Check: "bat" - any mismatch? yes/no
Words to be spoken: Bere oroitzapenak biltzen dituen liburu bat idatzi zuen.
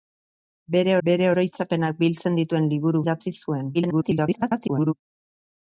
yes